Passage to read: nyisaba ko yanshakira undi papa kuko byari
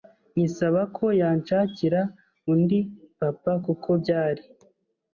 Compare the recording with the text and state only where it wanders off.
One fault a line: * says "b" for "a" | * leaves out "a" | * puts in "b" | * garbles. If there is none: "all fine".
all fine